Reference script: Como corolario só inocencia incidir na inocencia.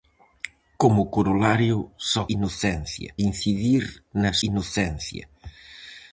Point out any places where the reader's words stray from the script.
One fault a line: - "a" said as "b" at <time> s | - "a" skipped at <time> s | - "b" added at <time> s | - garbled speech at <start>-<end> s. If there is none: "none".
none